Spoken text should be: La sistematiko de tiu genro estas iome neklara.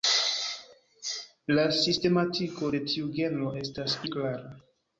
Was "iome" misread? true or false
true